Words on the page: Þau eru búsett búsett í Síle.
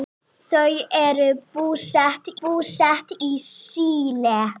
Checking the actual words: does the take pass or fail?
pass